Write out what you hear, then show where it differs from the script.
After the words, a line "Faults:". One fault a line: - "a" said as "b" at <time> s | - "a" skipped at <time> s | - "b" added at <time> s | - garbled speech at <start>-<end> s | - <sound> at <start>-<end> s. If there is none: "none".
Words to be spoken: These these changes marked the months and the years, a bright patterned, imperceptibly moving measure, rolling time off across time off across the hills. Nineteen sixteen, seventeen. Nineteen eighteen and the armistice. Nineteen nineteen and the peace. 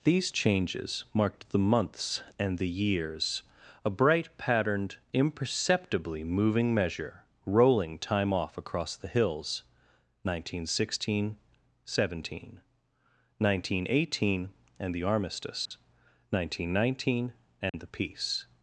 These changes marked the months and the years, a bright patterned, imperceptibly moving measure, rolling time off across the hills. Nineteen sixteen, seventeen. Nineteen eighteen and the armistice. Nineteen nineteen and the peace.
Faults:
- "these" skipped at 0.3 s
- "time off across" skipped at 8.9 s
- dropout at 15.7-15.7 s
- dropout at 17.7-17.7 s